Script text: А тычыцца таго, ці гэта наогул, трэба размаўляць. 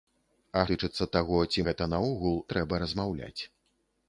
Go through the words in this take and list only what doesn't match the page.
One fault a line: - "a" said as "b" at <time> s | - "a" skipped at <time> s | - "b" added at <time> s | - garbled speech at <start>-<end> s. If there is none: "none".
none